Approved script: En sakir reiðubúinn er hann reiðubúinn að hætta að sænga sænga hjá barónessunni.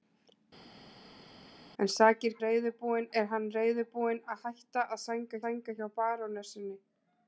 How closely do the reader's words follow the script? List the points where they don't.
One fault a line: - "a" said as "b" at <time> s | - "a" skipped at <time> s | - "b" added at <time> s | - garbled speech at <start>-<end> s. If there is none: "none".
none